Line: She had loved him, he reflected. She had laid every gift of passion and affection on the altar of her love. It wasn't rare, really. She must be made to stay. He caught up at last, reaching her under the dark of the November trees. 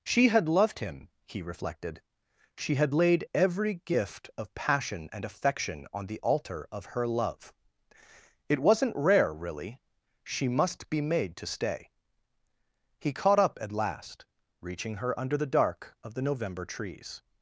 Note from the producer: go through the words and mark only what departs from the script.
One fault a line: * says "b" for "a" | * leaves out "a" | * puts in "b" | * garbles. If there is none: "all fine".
all fine